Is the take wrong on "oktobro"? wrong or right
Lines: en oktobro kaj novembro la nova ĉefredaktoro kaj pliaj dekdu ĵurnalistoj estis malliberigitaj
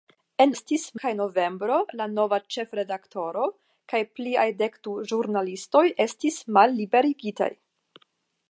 wrong